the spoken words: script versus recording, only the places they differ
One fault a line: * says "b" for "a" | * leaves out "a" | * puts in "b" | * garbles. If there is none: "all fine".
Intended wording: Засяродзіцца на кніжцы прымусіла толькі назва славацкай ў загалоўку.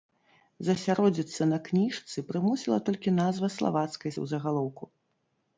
all fine